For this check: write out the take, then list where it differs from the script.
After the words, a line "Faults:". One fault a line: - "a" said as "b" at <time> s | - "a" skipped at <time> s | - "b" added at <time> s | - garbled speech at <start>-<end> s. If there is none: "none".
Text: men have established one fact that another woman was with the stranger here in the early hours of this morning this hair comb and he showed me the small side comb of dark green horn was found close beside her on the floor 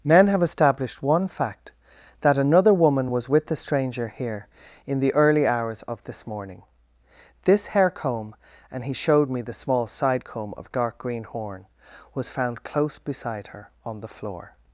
men have established one fact that another woman was with the stranger here in the early hours of this morning this hair comb and he showed me the small side comb of dark green horn was found close beside her on the floor
Faults:
none